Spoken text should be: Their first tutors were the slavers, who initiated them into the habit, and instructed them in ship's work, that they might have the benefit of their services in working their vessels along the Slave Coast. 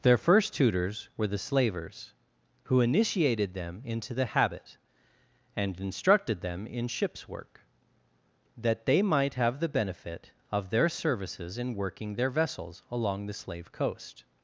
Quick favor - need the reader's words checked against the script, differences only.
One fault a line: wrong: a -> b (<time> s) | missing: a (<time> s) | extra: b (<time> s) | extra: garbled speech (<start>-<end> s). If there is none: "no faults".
no faults